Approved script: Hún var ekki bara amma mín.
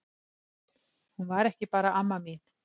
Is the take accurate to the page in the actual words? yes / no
yes